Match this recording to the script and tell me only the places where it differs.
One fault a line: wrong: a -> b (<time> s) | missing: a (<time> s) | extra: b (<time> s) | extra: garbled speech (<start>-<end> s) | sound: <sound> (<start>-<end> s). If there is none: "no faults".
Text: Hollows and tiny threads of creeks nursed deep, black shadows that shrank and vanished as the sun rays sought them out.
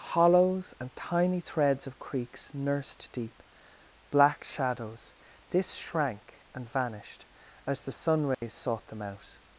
wrong: that -> this (5.5 s)
sound: dropout (8.3-8.4 s)